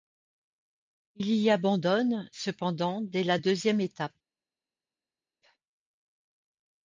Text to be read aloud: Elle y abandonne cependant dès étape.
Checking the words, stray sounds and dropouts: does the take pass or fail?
fail